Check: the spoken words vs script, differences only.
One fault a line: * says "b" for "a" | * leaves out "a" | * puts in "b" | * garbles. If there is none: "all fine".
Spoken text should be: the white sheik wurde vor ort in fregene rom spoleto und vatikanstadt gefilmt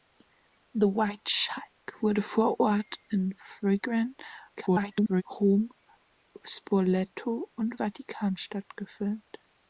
* garbles